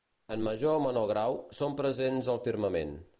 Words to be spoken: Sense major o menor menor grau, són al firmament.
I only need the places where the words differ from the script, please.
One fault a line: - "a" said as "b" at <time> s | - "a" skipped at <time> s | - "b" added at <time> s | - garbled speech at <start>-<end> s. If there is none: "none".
- "Sense" said as "En" at 0.3 s
- "menor" skipped at 1.1 s
- "presents" added at 1.8 s